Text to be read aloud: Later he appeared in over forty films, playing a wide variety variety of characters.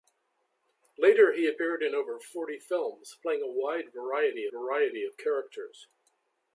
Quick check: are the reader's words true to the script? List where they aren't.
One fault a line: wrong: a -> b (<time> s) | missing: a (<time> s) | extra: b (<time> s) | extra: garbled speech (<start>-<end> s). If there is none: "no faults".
no faults